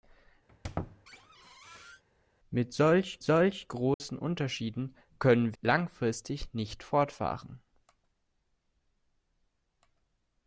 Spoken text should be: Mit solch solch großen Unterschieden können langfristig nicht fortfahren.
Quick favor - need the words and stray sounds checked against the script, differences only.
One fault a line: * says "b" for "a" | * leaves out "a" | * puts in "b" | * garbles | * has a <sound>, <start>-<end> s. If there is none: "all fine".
* has a squeak, 0.5-2.0 s
* has a dropout, 3.9-4.0 s